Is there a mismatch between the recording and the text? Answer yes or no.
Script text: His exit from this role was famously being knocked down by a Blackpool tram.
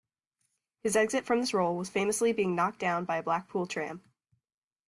no